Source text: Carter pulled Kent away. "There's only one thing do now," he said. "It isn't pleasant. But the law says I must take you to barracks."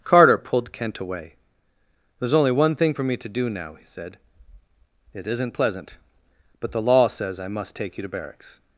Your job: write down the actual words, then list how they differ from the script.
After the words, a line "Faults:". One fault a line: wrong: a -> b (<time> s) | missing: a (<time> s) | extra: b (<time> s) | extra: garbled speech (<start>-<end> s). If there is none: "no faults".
Carter pulled Kent away. "There's only one thing for me to do now," he said. "It isn't pleasant. But the law says I must take you to barracks."
Faults:
extra: for me to (2.9 s)